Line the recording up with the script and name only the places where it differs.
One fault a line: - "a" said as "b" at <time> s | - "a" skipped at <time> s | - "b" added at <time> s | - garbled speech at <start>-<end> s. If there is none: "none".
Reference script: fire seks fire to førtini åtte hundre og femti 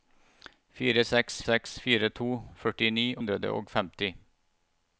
- "seks" added at 1.4 s
- "åtte" skipped at 3.1 s